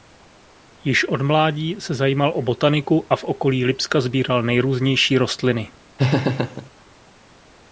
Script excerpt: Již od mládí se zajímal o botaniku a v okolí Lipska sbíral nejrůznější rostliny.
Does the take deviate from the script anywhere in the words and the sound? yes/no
yes